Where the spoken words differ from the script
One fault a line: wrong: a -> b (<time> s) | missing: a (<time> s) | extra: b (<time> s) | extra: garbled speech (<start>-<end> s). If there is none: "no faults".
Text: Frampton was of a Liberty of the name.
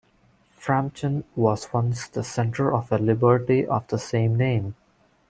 extra: once the centre (1.7 s)
extra: same (4.0 s)